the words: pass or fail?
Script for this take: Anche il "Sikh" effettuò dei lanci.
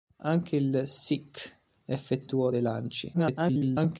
fail